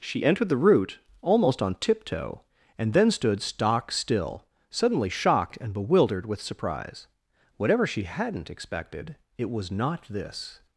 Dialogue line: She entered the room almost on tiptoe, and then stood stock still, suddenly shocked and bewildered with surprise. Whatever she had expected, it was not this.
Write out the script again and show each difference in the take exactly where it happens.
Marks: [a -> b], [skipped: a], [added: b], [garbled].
She entered the [room -> root] almost on tiptoe, and then stood stock still, suddenly shocked and bewildered with surprise. Whatever she [had -> hadn't] expected, it was not this.